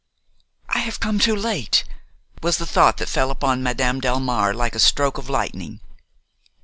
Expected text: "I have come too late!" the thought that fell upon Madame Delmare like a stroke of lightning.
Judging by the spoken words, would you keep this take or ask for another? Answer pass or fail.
fail